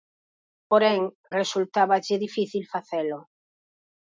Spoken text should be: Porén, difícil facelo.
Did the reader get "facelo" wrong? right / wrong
right